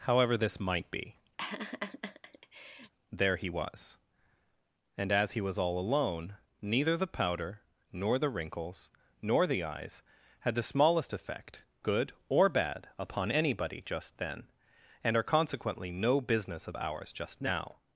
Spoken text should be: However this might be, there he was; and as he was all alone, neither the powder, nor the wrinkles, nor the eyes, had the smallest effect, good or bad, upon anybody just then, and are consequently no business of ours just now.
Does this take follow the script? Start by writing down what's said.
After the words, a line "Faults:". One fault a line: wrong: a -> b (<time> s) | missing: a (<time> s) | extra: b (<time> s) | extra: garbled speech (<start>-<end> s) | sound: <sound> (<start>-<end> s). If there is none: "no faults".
However this might be, there he was; and as he was all alone, neither the powder, nor the wrinkles, nor the eyes, had the smallest effect, good or bad, upon anybody just then, and are consequently no business of ours just now.
Faults:
sound: laugh (1.4-2.9 s)